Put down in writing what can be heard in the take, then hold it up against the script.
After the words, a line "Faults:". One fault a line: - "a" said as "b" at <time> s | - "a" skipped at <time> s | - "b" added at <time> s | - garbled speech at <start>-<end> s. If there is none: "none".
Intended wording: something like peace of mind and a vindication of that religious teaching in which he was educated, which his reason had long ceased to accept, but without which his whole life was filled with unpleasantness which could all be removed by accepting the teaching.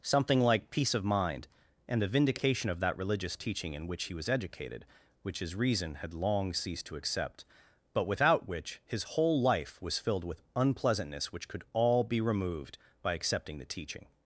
something like peace of mind and the vindication of that religious teaching in which he was educated, which his reason had long ceased to accept, but without which his whole life was filled with unpleasantness which could all be removed by accepting the teaching.
Faults:
- "a" said as "the" at 2.0 s